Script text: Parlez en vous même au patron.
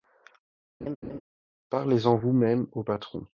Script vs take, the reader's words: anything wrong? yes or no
no